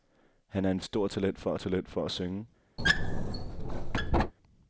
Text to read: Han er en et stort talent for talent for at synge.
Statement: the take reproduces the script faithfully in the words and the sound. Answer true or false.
false